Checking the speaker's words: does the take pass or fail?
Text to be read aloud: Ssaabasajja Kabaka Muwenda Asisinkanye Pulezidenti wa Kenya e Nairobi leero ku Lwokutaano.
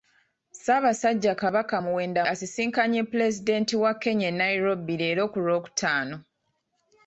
pass